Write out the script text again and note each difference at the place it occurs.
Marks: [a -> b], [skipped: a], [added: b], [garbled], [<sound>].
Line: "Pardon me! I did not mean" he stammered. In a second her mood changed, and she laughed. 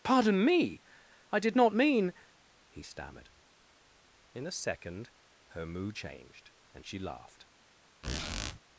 "Pardon me! I did not mean" he stammered. In a second her mood changed, and she laughed. [squeak]